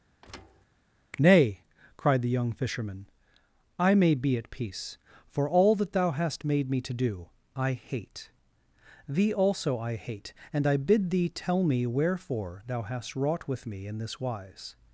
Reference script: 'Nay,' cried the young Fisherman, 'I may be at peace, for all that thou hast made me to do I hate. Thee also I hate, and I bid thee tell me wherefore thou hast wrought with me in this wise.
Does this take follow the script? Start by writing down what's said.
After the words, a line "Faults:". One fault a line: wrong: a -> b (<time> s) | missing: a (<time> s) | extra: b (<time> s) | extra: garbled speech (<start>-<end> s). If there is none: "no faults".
'Nay,' cried the young Fisherman, 'I may be at peace, for all that thou hast made me to do I hate. Thee also I hate, and I bid thee tell me wherefore thou hast wrought with me in this wise.
Faults:
no faults